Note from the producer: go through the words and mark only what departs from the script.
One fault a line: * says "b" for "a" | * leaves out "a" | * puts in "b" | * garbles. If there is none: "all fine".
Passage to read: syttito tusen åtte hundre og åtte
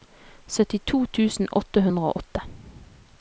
all fine